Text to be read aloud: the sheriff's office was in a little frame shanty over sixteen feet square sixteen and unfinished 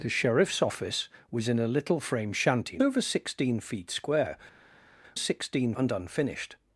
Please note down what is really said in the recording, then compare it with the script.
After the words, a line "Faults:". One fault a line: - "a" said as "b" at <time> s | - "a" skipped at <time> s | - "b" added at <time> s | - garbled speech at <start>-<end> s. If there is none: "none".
the sheriff's office was in a little frame shanty over sixteen feet square sixteen and unfinished
Faults:
none